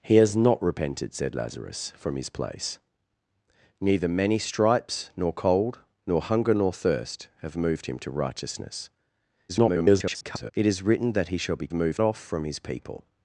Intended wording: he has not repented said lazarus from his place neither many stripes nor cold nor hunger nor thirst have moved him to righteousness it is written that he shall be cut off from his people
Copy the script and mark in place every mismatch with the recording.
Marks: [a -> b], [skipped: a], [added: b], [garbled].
he has not repented said lazarus from his place neither many stripes nor cold nor hunger nor thirst have moved him to righteousness [garbled] it is written that he shall be [cut -> moved] off from his people